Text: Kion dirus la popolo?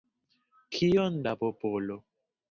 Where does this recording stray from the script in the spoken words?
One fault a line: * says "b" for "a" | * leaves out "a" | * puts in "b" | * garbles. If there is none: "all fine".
* leaves out "dirus"